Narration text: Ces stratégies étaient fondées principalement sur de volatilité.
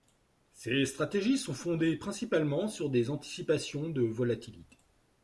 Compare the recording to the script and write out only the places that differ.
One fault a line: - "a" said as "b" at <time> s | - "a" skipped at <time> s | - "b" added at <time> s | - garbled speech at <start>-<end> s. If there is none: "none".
- "étaient" said as "sont" at 1.4 s
- "des anticipations" added at 2.9 s